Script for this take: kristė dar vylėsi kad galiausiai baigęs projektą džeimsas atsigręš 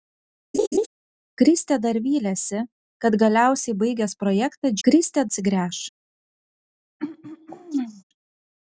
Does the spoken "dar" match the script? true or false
true